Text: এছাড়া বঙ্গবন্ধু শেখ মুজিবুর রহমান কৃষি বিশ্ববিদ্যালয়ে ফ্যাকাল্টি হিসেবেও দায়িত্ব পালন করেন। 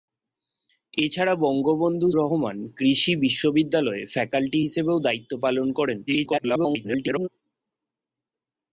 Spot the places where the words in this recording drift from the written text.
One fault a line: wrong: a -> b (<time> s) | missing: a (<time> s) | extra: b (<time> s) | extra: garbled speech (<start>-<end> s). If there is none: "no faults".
missing: শেখ মুজিবুর (2.1 s)
extra: garbled speech (6.1-7.3 s)